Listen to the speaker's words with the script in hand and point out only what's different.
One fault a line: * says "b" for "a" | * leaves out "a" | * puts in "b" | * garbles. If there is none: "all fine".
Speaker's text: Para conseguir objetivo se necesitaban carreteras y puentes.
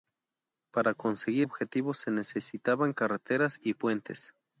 all fine